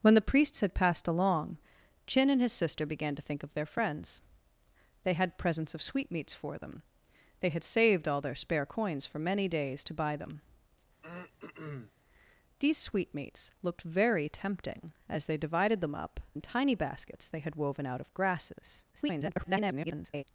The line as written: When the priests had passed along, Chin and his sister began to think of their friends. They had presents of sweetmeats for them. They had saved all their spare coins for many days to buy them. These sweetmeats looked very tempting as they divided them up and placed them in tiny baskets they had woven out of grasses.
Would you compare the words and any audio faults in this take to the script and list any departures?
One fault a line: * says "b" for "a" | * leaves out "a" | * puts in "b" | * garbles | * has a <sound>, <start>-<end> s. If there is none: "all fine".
* has a throat clearing, 11.0-11.9 s
* leaves out "and placed them"
* garbles